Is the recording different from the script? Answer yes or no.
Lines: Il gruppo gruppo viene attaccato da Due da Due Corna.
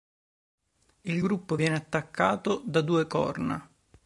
yes